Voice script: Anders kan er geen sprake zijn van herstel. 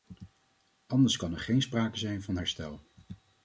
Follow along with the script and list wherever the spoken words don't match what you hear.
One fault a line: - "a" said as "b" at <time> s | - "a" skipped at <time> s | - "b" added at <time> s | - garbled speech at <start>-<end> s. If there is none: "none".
none